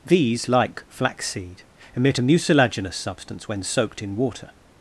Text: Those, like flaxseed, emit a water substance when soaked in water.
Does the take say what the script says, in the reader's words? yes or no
no